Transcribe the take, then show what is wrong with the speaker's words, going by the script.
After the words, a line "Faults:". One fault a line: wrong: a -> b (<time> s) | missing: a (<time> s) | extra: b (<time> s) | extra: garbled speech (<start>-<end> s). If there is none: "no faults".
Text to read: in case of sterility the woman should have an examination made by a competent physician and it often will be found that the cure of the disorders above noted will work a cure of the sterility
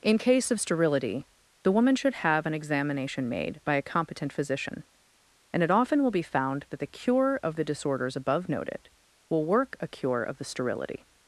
in case of sterility the woman should have an examination made by a competent physician and it often will be found that the cure of the disorders above noted will work a cure of the sterility
Faults:
no faults